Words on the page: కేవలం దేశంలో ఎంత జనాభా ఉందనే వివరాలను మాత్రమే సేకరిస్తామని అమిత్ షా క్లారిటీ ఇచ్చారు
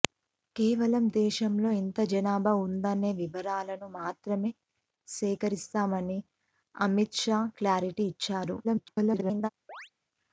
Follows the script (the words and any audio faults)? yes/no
no